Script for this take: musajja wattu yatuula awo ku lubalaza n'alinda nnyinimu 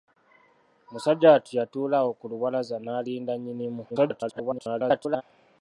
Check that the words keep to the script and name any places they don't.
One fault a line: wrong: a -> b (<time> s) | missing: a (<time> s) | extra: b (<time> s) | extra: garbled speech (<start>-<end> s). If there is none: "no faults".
extra: garbled speech (3.9-5.2 s)